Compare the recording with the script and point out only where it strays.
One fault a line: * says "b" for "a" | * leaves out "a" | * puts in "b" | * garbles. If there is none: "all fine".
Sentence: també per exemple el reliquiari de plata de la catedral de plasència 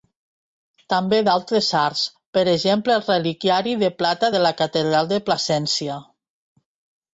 * puts in "d'altres arts"